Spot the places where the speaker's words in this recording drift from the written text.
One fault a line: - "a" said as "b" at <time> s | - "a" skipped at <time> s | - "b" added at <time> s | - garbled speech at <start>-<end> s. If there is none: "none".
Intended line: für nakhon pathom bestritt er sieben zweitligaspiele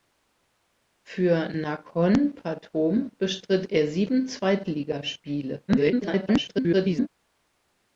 - garbled speech at 5.7-7.1 s